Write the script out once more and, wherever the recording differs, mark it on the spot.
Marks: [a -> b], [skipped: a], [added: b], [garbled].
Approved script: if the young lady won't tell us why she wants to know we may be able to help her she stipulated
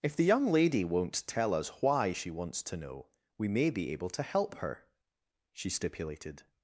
if the young lady won't tell us why she wants to know we may be able to help her she stipulated